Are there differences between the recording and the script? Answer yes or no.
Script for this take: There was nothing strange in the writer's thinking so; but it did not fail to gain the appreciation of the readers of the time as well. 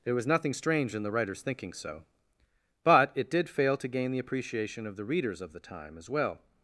yes